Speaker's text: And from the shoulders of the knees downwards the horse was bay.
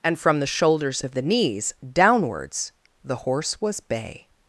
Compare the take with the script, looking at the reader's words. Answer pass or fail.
pass